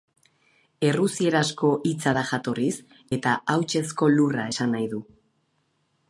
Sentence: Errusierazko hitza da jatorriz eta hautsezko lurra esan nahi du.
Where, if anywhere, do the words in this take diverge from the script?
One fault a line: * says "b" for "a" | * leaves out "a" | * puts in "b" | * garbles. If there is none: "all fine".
all fine